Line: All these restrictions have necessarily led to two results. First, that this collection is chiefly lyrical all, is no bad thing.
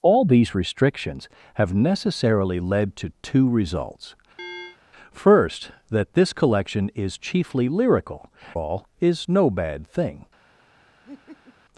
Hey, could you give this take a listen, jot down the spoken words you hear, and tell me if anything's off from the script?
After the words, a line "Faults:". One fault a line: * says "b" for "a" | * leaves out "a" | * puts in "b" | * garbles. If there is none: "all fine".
All these restrictions have necessarily led to two results. First, that this collection is chiefly lyrical all, is no bad thing.
Faults:
all fine